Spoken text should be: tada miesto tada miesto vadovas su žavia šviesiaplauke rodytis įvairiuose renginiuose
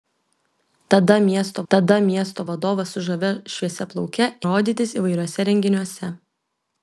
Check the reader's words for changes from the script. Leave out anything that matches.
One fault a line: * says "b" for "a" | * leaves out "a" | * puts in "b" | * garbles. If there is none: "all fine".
all fine